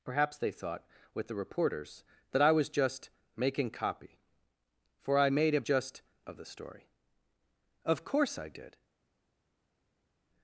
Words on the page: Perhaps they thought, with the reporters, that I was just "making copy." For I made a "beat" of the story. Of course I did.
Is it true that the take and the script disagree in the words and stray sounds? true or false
true